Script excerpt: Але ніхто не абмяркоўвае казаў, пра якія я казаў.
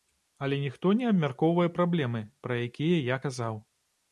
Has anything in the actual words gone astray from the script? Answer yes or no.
yes